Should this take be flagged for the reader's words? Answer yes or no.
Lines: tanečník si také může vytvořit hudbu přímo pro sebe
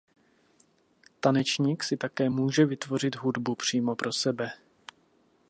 no